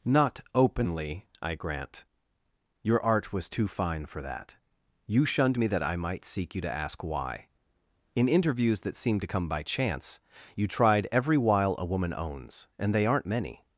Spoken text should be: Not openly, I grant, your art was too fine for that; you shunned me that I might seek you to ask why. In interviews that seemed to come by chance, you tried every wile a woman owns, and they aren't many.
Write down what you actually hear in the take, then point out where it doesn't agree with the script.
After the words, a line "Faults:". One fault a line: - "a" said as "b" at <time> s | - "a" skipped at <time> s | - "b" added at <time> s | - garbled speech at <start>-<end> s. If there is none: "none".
Not openly, I grant, your art was too fine for that; you shunned me that I might seek you to ask why. In interviews that seemed to come by chance, you tried every wile a woman owns, and they aren't many.
Faults:
none